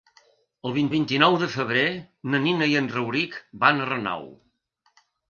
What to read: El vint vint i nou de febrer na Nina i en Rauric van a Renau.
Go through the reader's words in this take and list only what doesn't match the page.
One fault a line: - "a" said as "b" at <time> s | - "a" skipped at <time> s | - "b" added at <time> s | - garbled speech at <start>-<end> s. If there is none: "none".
none